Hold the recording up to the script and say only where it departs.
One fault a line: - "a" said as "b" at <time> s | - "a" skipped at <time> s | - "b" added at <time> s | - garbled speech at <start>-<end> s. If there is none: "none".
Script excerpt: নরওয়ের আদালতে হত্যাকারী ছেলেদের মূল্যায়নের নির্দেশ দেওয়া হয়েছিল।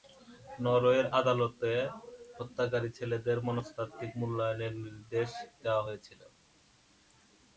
- "মনস্তাত্ত্বিক" added at 3.5 s